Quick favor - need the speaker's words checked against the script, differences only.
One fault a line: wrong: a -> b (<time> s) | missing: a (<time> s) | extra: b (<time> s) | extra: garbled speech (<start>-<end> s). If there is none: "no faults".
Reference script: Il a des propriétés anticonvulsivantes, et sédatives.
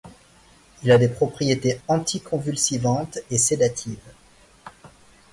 no faults